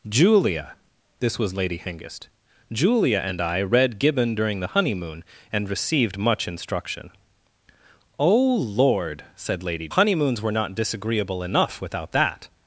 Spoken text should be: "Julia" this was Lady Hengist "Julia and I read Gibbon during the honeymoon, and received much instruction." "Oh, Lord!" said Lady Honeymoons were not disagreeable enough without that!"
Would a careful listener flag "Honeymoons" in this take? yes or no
no